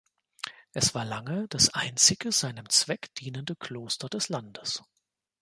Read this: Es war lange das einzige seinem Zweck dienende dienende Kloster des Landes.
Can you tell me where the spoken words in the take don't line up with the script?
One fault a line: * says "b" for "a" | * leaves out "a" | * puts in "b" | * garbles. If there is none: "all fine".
* leaves out "dienende"